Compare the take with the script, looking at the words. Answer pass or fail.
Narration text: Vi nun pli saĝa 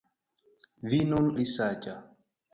pass